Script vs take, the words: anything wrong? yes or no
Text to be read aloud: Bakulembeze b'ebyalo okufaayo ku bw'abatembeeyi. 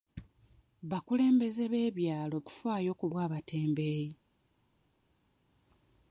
no